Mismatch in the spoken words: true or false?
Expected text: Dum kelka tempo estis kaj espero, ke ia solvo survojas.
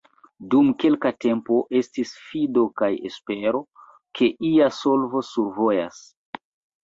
true